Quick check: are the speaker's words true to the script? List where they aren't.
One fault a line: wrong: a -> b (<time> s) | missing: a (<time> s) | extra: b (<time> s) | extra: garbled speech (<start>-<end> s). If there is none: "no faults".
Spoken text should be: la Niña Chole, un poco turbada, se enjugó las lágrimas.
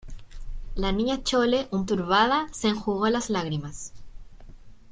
missing: poco (1.9 s)